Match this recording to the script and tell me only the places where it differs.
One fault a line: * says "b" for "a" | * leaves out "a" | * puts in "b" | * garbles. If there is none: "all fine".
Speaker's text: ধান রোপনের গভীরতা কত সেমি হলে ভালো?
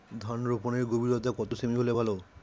all fine